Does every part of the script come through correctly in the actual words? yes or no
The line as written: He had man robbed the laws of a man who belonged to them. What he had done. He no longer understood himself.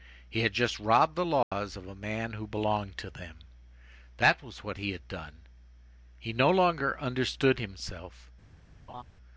no